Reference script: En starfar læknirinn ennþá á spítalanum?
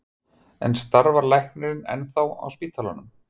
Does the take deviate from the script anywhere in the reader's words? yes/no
no